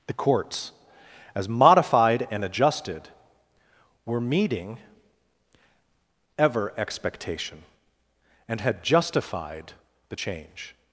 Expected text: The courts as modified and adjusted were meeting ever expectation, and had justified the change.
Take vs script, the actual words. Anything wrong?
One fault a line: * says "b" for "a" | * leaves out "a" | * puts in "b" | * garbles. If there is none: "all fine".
all fine